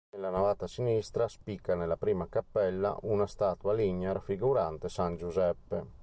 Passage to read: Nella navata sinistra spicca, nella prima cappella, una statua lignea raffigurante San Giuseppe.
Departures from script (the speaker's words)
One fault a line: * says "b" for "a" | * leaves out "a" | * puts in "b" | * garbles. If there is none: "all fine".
all fine